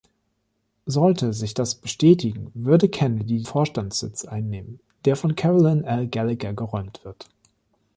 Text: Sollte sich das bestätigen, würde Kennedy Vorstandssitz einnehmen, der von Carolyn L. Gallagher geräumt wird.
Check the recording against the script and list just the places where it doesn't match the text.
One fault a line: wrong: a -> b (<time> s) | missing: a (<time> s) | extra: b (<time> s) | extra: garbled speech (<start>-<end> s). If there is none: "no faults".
no faults